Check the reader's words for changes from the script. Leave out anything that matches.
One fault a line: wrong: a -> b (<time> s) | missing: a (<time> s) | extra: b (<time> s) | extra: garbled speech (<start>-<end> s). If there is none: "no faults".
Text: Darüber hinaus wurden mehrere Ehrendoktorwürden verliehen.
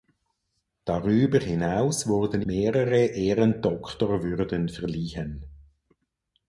no faults